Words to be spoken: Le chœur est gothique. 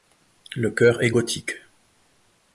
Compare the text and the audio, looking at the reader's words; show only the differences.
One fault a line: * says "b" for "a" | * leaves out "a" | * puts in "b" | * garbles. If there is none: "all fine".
all fine